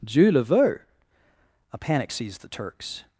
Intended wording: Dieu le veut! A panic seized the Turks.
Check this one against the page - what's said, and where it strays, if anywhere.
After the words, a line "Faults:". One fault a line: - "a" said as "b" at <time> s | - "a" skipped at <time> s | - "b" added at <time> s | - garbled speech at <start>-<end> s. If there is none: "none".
Dieu le veut! A panic seized the Turks.
Faults:
none